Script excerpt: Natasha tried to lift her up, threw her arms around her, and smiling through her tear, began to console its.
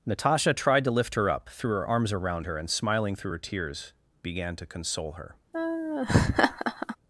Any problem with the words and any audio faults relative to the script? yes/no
yes